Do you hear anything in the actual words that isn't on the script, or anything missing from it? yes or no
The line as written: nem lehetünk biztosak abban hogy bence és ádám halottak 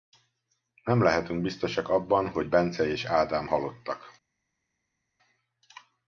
no